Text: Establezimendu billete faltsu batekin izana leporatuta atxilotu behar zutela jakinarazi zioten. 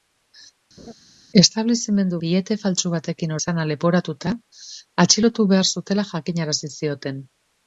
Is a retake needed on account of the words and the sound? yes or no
yes